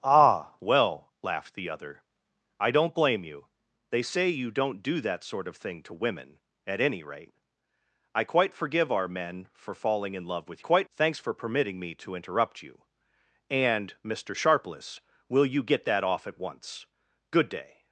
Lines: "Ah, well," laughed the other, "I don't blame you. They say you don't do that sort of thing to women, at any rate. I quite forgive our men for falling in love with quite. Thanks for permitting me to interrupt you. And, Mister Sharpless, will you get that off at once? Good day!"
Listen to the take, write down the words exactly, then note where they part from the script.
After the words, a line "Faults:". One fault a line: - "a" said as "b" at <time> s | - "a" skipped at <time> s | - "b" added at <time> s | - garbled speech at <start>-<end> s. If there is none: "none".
"Ah, well," laughed the other, "I don't blame you. They say you don't do that sort of thing to women, at any rate. I quite forgive our men for falling in love with quite. Thanks for permitting me to interrupt you. And, Mister Sharpless, will you get that off at once? Good day!"
Faults:
none